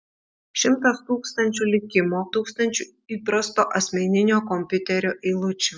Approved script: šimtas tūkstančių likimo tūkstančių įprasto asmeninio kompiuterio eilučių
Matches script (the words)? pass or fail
pass